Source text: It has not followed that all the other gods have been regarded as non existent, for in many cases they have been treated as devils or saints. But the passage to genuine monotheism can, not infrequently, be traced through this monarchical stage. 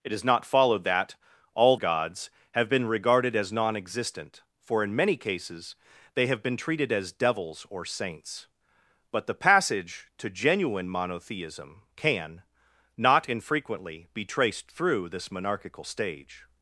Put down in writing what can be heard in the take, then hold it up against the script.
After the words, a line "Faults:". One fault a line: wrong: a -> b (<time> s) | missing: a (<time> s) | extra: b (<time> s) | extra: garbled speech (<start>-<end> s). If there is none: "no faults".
It has not followed that all gods have been regarded as non existent, for in many cases they have been treated as devils or saints. But the passage to genuine monotheism can, not infrequently, be traced through this monarchical stage.
Faults:
missing: the other (1.8 s)